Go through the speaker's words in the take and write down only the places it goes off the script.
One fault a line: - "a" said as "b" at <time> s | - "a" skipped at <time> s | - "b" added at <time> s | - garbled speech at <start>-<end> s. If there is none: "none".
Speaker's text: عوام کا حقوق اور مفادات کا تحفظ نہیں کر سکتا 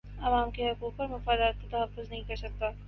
- "کا" said as "کے" at 0.5 s